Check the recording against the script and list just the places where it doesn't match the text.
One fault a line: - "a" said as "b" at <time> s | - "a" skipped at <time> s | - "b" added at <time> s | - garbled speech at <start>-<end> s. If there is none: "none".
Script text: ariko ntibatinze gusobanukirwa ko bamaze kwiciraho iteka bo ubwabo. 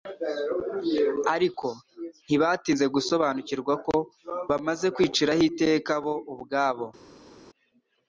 none